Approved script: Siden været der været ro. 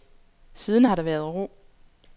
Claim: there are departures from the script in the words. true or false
true